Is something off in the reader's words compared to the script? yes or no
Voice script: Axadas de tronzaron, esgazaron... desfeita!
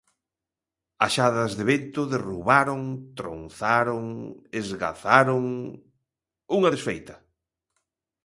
yes